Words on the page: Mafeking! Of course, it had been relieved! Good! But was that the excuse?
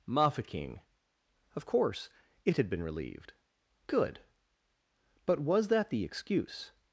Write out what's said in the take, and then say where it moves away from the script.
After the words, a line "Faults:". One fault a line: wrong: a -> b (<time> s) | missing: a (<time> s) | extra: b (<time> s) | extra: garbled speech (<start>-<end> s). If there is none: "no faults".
Mafeking! Of course, it had been relieved! Good! But was that the excuse?
Faults:
no faults